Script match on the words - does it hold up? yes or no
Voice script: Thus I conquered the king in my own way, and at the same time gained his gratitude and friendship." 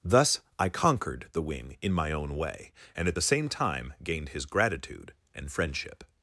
no